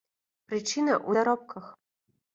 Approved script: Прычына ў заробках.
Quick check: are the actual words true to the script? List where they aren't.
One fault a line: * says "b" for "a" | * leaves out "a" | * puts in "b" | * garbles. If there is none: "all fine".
all fine